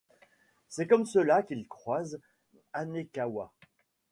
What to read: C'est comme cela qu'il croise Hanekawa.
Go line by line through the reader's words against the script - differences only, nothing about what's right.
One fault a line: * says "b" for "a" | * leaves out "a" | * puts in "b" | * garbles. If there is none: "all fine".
all fine